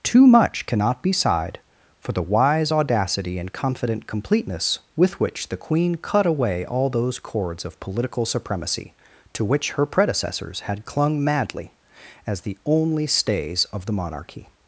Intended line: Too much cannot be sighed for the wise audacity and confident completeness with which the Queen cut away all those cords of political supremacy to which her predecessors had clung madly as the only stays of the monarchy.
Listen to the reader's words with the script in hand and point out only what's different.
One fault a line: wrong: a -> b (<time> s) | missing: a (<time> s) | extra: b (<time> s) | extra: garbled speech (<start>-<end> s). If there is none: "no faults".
no faults